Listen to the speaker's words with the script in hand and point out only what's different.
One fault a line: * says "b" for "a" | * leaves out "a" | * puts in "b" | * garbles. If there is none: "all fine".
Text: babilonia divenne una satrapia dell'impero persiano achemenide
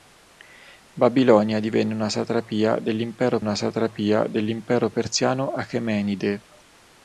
* puts in "una satrapia dell'impero"